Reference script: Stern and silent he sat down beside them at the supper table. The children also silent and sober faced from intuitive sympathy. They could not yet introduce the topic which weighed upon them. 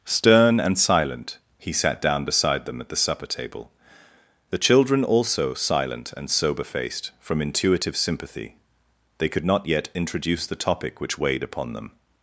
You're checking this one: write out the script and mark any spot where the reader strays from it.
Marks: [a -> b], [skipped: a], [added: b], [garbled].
Stern and silent he sat down beside them at the supper table. The children also silent and sober faced from intuitive sympathy. They could not yet introduce the topic which weighed upon them.